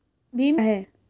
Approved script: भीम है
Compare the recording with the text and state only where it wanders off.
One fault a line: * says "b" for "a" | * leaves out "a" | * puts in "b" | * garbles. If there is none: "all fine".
all fine